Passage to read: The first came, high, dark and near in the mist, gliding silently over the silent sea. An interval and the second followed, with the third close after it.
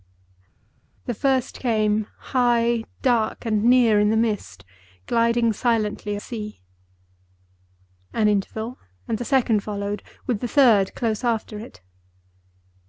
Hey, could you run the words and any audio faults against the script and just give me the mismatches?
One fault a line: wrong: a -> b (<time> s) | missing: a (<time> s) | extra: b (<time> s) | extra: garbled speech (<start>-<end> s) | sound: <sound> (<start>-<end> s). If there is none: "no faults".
missing: over the silent (6.2 s)